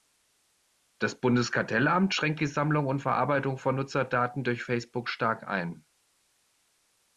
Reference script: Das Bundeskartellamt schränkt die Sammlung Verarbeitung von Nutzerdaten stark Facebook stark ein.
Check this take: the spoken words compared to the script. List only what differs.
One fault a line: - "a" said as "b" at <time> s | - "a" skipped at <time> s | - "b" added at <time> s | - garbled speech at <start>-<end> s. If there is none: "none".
- "und" added at 2.9 s
- "stark" said as "durch" at 4.4 s